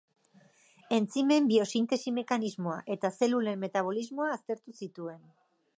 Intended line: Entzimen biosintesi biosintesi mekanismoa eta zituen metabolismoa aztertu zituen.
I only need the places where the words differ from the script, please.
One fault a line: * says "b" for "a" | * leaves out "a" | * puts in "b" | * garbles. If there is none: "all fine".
* leaves out "biosintesi"
* says "zelulen" for "zituen"